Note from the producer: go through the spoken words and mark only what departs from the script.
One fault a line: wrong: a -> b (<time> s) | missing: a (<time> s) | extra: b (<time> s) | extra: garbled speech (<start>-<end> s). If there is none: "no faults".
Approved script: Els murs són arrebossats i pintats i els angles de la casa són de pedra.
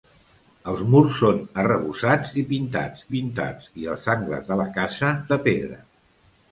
extra: pintats (3.2 s)
missing: són (5.1 s)